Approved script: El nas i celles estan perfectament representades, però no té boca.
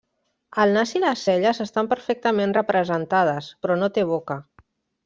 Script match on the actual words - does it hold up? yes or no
no